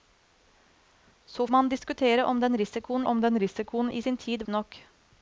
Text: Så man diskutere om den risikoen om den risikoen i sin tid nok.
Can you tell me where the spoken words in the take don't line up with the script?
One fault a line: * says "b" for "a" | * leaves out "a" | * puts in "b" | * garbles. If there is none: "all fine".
all fine